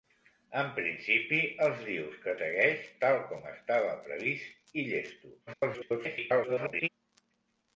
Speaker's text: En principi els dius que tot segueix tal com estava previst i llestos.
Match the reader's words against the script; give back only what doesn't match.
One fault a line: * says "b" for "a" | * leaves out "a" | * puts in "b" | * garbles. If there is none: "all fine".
* leaves out "tot"
* garbles